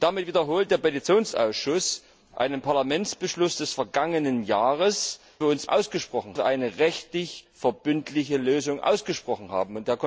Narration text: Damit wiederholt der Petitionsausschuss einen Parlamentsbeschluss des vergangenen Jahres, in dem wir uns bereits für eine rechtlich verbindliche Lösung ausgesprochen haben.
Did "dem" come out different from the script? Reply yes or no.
yes